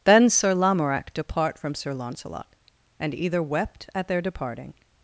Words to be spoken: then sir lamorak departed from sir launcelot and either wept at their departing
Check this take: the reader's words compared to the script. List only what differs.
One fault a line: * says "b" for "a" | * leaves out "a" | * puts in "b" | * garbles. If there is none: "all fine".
* says "depart" for "departed"